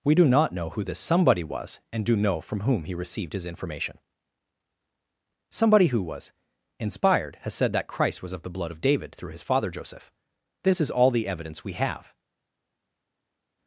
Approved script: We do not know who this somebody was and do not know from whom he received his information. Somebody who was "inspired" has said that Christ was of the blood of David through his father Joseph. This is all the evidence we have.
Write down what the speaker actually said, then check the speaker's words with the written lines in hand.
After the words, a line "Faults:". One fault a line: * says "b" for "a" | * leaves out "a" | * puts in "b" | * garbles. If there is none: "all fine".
We do not know who this somebody was and do know from whom he received his information. Somebody who was "inspired" has said that Christ was of the blood of David through his father Joseph. This is all the evidence we have.
Faults:
* leaves out "not"